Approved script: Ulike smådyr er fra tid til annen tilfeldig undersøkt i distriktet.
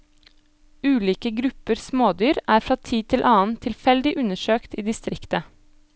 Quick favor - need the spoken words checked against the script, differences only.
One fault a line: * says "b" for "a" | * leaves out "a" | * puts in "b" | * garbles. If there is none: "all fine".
* puts in "grupper"